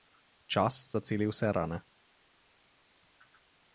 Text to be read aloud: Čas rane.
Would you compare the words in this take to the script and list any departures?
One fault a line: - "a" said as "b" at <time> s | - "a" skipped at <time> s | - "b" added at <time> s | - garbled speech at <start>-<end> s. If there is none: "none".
- "zaceli vse" added at 0.9 s